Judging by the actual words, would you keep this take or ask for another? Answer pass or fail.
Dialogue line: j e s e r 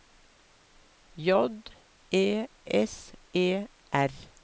pass